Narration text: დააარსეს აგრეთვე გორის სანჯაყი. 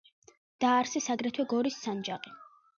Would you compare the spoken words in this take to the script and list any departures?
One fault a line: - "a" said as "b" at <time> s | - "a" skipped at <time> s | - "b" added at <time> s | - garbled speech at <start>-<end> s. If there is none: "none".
none